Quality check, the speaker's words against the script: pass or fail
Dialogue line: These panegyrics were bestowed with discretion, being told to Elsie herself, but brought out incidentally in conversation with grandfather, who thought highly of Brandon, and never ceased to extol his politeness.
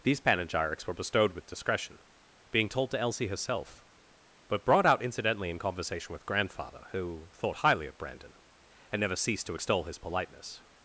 pass